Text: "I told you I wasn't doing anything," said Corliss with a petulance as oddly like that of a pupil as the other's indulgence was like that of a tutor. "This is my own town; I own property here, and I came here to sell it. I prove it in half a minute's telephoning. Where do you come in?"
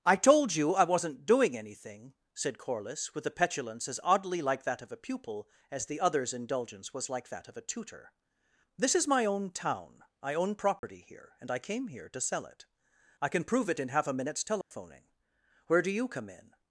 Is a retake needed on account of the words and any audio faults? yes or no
yes